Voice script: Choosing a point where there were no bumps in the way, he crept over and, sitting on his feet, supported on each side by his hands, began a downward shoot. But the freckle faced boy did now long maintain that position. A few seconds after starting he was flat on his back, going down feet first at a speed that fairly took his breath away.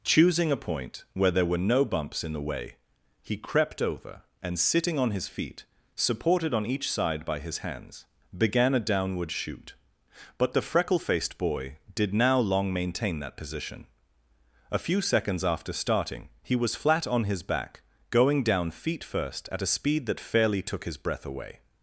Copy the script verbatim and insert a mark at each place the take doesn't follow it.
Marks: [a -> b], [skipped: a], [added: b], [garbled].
Choosing a point where there were no bumps in the way, he crept over and, sitting on his feet, supported on each side by his hands, began a downward shoot. But the freckle faced boy did now long maintain that position. A few seconds after starting he was flat on his back, going down feet first at a speed that fairly took his breath away.